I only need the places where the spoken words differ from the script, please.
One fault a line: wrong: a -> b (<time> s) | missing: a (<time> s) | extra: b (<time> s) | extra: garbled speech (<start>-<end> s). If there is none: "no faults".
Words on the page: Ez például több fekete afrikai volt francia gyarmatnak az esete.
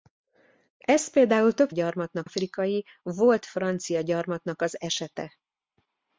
wrong: fekete -> gyarmatnak (1.7 s)